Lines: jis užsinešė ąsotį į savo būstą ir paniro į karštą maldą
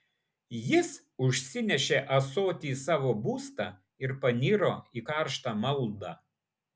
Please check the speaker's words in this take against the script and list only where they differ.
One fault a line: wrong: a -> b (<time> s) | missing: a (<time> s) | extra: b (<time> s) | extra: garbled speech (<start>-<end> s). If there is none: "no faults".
no faults